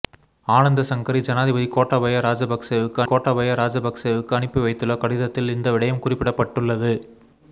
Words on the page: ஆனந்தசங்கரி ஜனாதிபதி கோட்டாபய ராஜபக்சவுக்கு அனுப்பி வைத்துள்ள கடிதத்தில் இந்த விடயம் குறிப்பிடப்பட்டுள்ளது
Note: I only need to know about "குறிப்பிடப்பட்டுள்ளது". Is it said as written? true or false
true